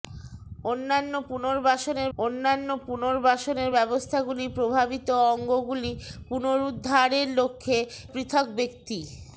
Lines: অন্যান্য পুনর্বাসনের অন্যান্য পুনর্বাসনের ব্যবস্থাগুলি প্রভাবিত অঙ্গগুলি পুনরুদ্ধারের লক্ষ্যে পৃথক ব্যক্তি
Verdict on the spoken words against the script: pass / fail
pass